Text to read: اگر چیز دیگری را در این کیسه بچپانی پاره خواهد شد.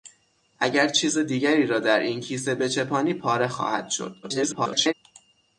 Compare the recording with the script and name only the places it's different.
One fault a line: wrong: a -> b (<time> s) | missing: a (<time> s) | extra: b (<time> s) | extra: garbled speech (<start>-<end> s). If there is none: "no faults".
extra: garbled speech (4.2-4.9 s)